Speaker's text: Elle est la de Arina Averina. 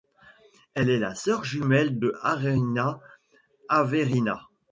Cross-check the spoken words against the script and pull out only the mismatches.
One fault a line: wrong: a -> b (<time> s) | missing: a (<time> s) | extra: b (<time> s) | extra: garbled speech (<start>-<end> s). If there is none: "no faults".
extra: sœur jumelle (1.1 s)